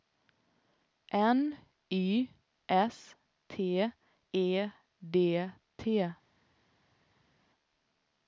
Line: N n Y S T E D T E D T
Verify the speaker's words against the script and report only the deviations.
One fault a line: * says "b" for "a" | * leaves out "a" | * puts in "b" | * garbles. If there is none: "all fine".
* leaves out "n"
* leaves out "E D T"